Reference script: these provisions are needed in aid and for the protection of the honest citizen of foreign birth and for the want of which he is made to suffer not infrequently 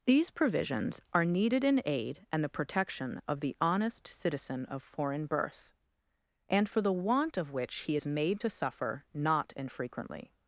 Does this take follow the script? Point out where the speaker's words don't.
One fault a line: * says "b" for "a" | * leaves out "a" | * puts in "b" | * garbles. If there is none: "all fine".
* leaves out "for"